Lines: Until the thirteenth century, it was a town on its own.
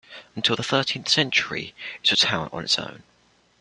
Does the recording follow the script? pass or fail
pass